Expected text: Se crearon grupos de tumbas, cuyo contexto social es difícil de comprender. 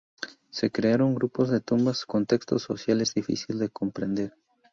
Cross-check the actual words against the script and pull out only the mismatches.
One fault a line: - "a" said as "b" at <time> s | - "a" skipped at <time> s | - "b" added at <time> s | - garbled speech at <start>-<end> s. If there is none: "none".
- "cuyo" skipped at 2.1 s